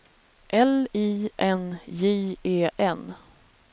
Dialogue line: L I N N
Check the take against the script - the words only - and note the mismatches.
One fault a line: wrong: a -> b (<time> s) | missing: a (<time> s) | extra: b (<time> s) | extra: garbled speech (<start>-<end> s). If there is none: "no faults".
extra: J E (1.9 s)